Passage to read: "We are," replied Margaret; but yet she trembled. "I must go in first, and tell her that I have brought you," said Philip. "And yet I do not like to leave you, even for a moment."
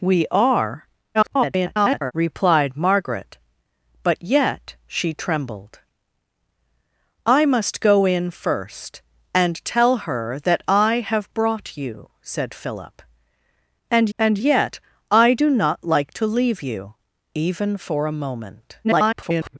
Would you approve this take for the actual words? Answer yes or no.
no